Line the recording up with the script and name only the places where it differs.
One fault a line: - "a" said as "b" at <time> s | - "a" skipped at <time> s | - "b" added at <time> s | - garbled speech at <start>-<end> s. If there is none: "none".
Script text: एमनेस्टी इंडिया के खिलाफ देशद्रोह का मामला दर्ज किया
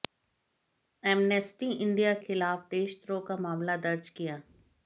- "के" skipped at 2.1 s